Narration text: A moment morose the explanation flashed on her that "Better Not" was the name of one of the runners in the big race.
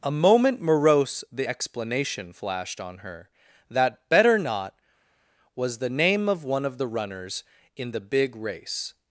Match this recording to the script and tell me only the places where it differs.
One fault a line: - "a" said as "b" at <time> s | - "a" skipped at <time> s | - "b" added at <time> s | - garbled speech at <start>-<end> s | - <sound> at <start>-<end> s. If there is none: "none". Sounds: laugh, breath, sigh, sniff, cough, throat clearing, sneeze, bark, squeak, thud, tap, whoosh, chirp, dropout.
none